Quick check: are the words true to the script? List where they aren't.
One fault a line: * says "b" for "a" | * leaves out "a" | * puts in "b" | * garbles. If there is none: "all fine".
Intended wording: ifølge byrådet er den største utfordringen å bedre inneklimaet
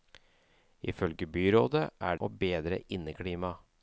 * leaves out "den største utfordringen"